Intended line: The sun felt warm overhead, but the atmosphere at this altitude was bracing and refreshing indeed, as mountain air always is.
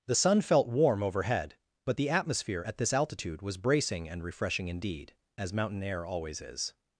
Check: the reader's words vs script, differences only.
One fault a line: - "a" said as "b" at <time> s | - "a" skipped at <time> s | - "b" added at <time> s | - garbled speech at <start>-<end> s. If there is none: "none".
none